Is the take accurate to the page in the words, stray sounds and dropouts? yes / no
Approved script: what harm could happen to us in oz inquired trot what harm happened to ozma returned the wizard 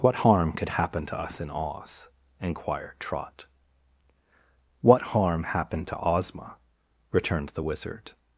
yes